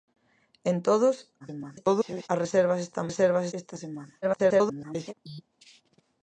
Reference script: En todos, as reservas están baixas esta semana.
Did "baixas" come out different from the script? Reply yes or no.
yes